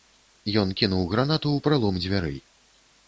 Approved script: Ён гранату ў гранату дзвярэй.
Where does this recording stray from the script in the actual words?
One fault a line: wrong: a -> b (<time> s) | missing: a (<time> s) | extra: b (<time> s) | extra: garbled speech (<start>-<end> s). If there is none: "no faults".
extra: кінуў (0.8 s)
wrong: гранату -> пралом (1.7 s)